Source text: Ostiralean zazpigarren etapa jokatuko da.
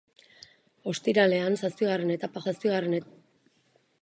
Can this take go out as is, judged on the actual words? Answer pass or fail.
fail